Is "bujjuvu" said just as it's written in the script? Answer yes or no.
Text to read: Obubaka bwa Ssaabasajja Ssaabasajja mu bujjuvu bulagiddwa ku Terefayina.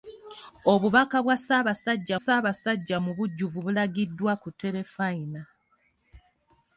yes